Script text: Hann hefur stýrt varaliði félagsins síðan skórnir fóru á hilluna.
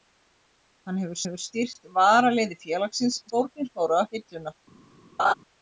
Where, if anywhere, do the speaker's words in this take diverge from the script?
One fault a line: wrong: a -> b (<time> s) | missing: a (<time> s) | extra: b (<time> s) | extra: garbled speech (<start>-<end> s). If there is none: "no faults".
extra: hefur (1.2 s)
missing: síðan (3.2 s)